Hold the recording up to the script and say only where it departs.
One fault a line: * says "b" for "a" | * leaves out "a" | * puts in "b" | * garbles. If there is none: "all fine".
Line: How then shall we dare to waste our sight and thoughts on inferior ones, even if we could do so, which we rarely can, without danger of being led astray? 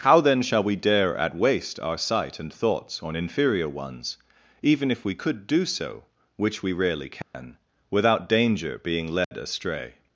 * says "at" for "to"
* leaves out "of"